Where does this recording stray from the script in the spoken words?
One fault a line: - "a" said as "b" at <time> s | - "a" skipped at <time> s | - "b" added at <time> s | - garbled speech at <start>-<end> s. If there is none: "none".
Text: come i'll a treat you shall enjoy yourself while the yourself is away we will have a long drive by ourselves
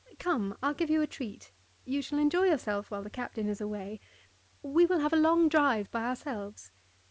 - "give you" added at 0.7 s
- "yourself" said as "captain" at 3.1 s